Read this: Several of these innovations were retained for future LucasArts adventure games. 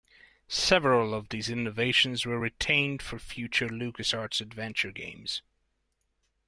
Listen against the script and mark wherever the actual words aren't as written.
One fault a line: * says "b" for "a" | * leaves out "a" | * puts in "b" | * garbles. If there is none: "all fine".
all fine